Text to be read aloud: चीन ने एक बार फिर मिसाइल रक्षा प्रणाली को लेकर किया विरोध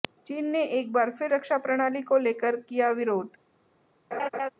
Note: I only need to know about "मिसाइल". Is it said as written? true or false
false